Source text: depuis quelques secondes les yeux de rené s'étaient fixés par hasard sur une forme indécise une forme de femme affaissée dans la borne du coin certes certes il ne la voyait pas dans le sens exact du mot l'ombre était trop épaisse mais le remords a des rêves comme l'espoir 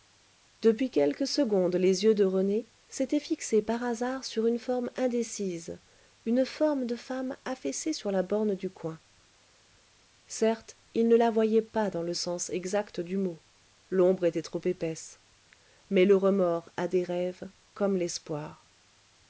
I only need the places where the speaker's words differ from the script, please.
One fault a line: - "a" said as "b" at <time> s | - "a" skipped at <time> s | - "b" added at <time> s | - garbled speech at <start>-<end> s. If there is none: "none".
- "dans" said as "sur" at 7.9 s
- "certes" skipped at 10.8 s